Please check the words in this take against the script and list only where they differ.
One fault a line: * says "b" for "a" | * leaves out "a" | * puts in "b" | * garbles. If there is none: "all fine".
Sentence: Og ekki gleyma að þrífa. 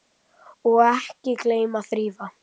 all fine